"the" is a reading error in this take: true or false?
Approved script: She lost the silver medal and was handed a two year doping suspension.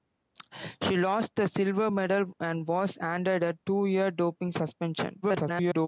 false